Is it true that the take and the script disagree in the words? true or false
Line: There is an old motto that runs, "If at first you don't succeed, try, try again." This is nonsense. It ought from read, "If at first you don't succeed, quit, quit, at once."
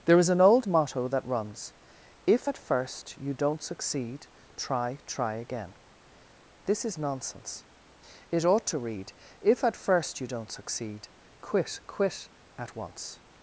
true